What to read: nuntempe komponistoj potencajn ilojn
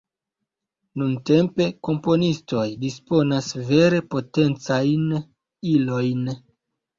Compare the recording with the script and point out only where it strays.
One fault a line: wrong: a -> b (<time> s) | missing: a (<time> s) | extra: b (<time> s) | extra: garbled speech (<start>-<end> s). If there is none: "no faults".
extra: disponas vere (2.8 s)